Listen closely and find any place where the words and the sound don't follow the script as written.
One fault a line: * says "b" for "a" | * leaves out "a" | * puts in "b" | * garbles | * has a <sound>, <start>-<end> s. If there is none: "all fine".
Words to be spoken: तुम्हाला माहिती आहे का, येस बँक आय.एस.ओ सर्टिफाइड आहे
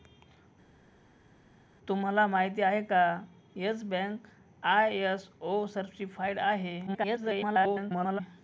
* garbles